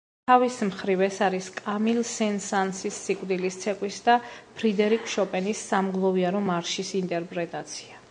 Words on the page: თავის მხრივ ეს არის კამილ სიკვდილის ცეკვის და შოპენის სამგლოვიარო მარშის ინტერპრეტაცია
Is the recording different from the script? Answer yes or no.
yes